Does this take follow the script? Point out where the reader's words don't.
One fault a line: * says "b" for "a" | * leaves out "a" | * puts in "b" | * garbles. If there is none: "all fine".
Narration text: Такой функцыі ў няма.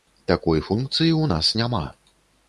* puts in "нас"